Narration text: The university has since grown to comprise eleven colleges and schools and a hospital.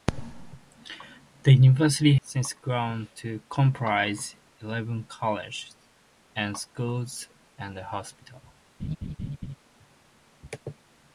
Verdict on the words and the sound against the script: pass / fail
fail